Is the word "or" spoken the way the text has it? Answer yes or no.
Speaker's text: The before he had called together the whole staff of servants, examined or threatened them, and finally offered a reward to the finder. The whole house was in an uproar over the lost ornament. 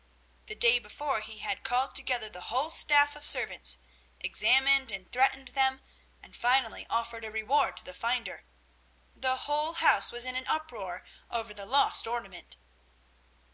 no